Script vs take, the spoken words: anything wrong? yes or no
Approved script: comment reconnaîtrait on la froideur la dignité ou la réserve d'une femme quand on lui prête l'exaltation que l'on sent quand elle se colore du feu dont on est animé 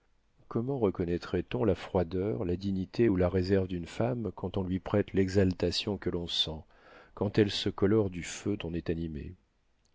yes